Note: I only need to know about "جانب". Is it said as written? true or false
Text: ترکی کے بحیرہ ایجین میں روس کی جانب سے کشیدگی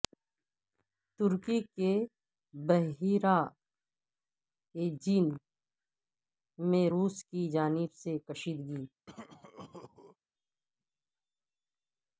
true